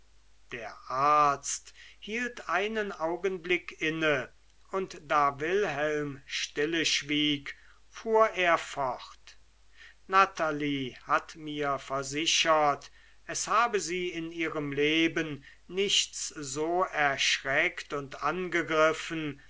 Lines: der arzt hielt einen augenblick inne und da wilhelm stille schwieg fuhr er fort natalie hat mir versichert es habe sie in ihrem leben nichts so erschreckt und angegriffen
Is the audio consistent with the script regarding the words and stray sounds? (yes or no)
yes